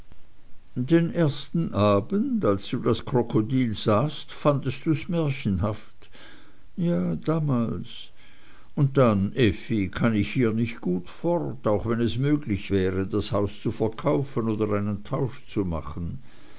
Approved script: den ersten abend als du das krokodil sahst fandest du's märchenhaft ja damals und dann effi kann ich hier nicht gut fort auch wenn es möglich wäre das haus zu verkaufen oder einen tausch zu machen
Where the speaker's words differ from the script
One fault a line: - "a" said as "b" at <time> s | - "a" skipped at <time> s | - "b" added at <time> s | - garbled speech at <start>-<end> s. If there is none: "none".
none